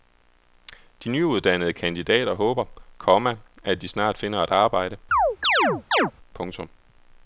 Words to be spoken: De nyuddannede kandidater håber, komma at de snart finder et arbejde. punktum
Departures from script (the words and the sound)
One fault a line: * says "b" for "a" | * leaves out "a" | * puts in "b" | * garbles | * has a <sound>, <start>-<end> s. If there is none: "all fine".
* has a chirp, 5.1-6.1 s